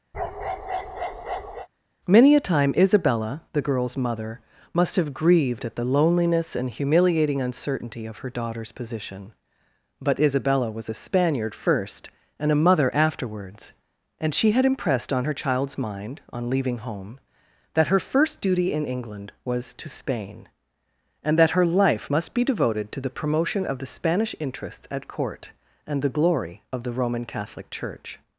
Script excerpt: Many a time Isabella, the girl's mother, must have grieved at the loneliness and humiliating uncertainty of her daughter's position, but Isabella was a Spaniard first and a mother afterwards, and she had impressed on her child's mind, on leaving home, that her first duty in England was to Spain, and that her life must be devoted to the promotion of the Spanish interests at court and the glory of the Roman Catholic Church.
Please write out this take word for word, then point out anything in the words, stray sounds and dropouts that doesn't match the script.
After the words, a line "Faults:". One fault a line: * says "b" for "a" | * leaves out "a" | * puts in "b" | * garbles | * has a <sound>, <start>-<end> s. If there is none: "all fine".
Many a time Isabella, the girl's mother, must have grieved at the loneliness and humiliating uncertainty of her daughter's position, but Isabella was a Spaniard first and a mother afterwards, and she had impressed on her child's mind, on leaving home, that her first duty in England was to Spain, and that her life must be devoted to the promotion of the Spanish interests at court and the glory of the Roman Catholic Church.
Faults:
* has a bark, 0.1-1.7 s